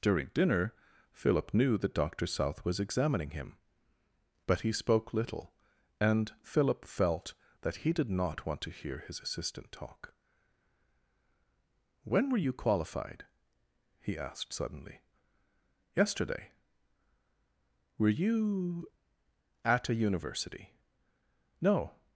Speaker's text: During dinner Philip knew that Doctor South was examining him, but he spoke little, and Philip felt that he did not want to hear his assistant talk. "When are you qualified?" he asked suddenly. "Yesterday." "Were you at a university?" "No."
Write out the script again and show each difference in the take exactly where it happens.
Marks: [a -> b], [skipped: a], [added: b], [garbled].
During dinner Philip knew that Doctor South was examining him, but he spoke little, and Philip felt that he did not want to hear his assistant talk. "When [are -> were] you qualified?" he asked suddenly. "Yesterday." "Were you at a university?" "No."